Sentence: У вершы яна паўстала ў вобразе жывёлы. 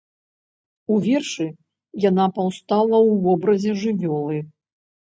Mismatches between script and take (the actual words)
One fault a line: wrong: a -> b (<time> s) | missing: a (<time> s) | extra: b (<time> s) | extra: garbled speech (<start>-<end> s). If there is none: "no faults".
no faults